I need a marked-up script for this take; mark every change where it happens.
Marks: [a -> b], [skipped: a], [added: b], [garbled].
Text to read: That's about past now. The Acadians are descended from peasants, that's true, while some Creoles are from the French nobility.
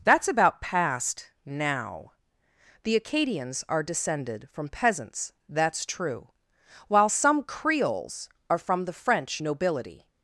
That's about past now. The Acadians are descended from peasants, that's true, while some Creoles are from the French nobility.